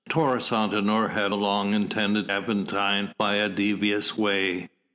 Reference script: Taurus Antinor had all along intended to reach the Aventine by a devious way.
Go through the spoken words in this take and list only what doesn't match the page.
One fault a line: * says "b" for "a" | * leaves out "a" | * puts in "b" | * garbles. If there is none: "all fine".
* leaves out "all"
* leaves out "to reach the"